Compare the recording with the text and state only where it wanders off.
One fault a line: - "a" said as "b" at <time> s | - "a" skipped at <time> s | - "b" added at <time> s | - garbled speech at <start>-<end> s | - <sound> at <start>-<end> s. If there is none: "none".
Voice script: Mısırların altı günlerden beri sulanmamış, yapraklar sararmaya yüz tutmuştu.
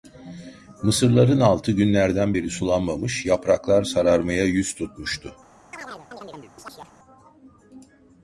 - chirp at 5.7-6.9 s